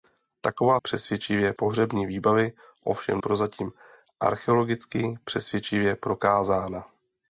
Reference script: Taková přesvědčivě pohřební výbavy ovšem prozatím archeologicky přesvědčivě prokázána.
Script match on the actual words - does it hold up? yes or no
yes